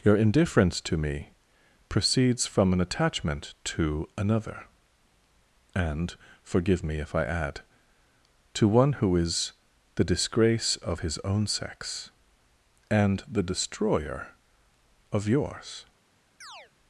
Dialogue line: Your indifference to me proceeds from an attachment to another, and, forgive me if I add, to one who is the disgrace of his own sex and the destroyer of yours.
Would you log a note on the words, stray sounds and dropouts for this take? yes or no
yes